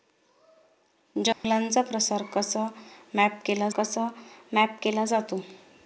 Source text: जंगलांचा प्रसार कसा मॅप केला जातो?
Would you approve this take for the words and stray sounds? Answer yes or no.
no